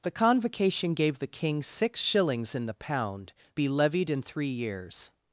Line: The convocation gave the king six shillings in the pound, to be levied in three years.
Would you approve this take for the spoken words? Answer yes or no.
no